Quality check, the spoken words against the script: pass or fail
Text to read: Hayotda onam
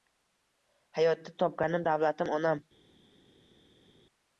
fail